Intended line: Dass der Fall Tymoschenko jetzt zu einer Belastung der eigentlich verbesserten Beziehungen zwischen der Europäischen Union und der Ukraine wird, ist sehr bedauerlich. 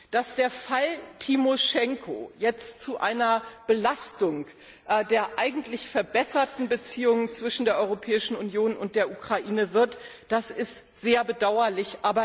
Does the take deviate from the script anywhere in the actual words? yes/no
no